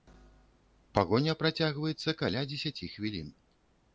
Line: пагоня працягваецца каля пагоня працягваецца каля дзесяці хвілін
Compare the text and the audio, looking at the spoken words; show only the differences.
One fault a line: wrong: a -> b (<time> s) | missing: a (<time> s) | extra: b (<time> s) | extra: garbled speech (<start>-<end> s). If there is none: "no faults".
missing: пагоня працягваецца каля (2.4 s)